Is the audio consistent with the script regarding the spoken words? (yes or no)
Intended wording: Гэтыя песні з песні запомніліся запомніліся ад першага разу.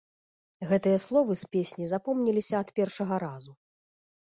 no